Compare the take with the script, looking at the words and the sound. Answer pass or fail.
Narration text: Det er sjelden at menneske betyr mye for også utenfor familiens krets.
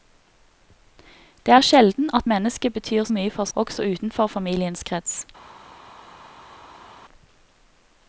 pass